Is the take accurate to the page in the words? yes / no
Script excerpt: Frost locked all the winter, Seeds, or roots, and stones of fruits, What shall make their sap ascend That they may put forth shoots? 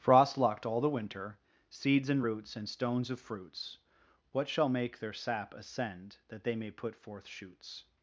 no